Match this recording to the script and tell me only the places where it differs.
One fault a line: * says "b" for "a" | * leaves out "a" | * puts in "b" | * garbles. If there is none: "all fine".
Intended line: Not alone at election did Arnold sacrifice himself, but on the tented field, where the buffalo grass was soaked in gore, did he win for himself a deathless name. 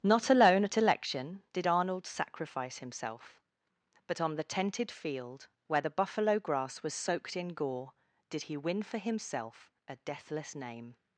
all fine